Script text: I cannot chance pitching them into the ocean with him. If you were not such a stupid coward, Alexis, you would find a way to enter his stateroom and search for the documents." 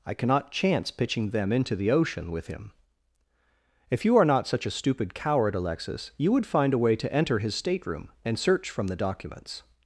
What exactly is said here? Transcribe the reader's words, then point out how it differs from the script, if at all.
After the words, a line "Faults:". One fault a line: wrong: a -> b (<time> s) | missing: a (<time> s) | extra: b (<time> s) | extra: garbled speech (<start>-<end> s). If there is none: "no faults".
I cannot chance pitching them into the ocean with him. If you are not such a stupid coward, Alexis, you would find a way to enter his stateroom and search from the documents."
Faults:
wrong: were -> are (4.2 s)
wrong: for -> from (8.7 s)